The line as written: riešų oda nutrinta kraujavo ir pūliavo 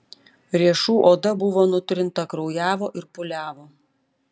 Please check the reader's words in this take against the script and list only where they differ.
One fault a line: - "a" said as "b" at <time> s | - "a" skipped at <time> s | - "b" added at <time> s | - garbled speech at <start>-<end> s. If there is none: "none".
- "buvo" added at 1.4 s